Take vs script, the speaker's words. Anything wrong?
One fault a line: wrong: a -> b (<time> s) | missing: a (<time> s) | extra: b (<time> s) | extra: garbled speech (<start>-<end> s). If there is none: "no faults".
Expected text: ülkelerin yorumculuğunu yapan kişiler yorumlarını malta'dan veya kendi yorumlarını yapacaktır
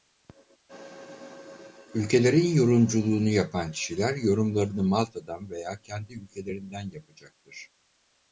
wrong: yorumlarını -> ülkelerinden (6.1 s)